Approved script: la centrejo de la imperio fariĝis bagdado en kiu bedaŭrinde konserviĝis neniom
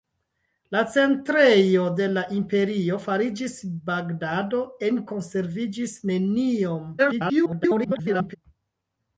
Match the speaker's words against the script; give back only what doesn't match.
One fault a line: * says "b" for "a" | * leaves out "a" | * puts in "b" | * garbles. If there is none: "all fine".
* leaves out "kiu bedaŭrinde"
* garbles